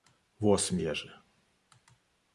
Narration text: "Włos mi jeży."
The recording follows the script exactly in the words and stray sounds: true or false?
true